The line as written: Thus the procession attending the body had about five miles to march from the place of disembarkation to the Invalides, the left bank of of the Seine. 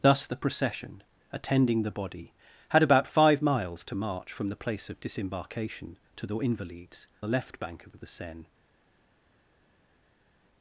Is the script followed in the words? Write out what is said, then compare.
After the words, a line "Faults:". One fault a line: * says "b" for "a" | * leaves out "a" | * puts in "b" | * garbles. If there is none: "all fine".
Thus the procession attending the body had about five miles to march from the place of disembarkation to the Invalides, the left bank of of the Seine.
Faults:
all fine